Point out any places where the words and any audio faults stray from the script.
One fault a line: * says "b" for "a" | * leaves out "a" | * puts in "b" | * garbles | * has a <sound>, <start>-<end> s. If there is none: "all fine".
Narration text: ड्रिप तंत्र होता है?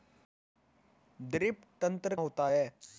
all fine